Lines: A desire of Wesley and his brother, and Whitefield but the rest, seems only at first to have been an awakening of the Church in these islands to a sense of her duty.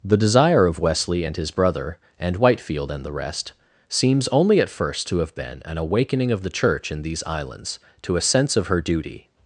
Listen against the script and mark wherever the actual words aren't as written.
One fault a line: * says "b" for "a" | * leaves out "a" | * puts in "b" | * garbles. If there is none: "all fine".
* says "The" for "A"
* says "and" for "but"